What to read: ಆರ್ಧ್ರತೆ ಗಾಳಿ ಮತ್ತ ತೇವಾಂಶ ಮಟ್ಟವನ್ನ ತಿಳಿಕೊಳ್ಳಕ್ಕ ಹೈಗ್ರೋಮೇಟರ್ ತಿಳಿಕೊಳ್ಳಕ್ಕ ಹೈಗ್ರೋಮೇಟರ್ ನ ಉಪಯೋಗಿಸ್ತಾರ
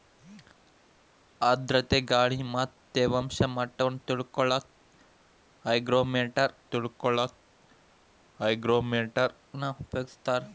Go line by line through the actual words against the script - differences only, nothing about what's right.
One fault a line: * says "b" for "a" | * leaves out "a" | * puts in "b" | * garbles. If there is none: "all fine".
all fine